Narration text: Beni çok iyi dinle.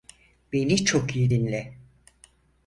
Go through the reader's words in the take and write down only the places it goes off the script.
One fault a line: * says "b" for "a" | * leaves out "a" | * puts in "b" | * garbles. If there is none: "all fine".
all fine